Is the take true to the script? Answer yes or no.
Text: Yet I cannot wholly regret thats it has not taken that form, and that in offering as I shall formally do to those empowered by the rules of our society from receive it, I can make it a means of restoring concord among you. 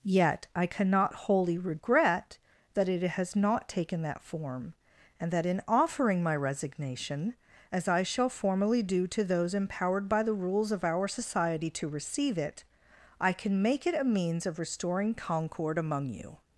no